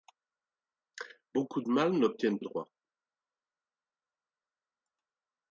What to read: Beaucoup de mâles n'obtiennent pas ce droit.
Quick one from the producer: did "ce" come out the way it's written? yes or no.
no